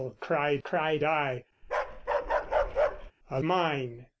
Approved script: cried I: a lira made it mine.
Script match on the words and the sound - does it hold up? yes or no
no